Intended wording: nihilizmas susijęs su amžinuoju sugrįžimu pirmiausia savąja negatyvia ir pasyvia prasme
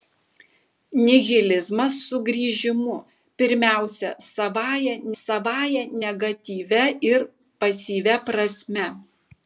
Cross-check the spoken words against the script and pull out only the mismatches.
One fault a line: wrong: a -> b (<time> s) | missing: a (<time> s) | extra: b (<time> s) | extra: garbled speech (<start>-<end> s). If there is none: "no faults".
missing: susijęs su amžinuoju (1.9 s)
extra: savąja (5.2 s)